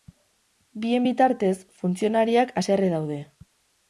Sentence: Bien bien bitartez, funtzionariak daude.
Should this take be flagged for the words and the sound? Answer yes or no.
yes